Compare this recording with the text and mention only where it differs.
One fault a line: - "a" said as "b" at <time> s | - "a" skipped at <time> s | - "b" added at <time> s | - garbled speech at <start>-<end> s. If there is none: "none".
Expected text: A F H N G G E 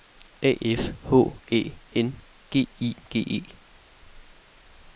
- "Æ" added at 1.5 s
- "I" added at 2.8 s